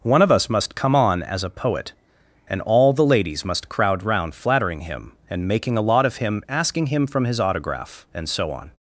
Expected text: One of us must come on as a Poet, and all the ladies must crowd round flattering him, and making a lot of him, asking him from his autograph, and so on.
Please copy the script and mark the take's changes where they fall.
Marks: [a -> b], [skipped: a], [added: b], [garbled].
One of us must come on as a Poet, and all the ladies must crowd round flattering him, and making a lot of him, asking him from his autograph, and so on.